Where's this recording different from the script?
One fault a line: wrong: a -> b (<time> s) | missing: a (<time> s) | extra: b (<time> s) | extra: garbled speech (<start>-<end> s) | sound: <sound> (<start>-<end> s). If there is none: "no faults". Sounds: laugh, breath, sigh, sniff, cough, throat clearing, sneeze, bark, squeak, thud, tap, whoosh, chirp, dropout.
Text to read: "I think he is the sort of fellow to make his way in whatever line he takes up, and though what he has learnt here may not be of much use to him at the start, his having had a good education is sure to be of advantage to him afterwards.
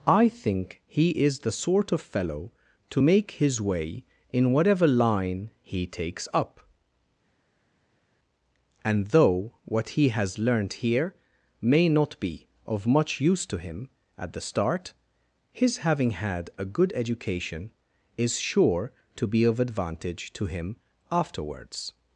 no faults